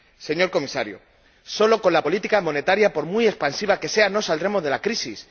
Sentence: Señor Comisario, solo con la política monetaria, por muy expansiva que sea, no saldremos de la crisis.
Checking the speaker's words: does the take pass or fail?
pass